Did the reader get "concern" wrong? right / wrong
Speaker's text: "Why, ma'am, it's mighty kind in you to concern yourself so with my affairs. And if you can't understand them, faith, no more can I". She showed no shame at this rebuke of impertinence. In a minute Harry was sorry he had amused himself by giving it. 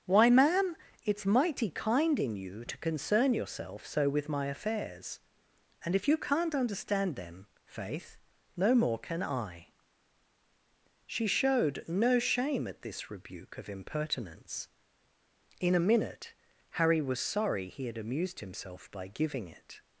right